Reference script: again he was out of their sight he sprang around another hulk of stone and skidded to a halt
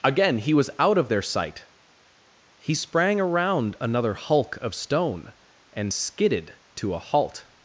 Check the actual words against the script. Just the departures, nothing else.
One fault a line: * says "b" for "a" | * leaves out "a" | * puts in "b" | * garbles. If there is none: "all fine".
all fine